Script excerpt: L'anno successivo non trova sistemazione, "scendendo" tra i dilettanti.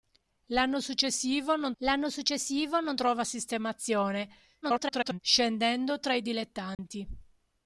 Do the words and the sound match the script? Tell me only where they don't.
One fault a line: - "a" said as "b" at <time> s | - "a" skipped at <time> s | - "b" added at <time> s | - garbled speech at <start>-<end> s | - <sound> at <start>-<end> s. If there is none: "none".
- "l'anno successivo non" added at 1.8 s
- garbled speech at 4.6-5.2 s
- dropout at 6.7-6.8 s